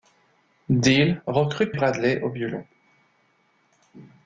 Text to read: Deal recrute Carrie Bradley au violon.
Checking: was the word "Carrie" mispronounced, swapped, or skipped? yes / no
yes